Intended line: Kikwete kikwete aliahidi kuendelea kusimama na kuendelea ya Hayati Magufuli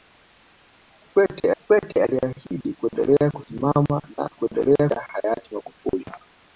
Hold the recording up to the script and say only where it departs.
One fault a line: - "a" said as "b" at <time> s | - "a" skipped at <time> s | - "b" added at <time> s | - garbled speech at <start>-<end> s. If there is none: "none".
none